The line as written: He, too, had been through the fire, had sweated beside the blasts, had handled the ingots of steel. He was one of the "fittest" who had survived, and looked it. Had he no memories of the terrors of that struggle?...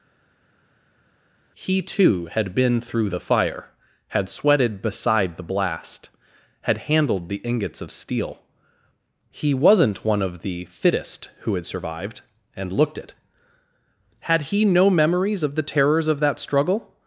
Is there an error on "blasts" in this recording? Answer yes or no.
yes